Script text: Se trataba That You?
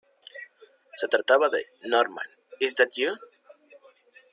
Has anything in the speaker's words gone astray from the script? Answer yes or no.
yes